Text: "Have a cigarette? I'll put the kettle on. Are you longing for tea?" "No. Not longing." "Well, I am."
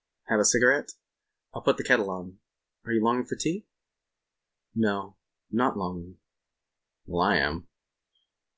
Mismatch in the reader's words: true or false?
false